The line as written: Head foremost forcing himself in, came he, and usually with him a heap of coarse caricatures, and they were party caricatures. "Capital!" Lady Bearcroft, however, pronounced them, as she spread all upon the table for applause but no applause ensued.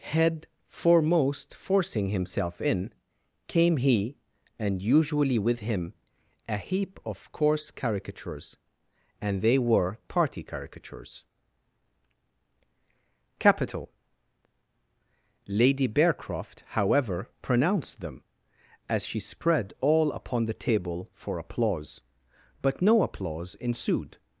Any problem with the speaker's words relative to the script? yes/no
no